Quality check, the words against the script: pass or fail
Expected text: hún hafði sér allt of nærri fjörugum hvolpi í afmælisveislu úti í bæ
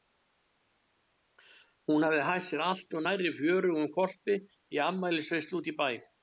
fail